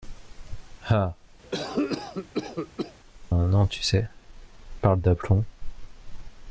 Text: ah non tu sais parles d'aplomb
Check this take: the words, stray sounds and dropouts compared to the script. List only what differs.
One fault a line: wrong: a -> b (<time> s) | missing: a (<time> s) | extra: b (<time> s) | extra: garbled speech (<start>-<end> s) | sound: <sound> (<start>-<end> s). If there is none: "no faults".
sound: cough (1.4-3.0 s)